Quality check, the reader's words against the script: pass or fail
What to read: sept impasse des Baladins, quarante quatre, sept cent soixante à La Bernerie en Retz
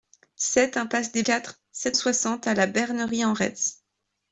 fail